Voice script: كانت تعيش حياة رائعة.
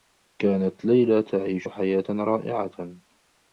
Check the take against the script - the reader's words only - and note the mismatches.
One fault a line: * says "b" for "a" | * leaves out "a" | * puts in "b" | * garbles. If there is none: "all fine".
* puts in "ليلى"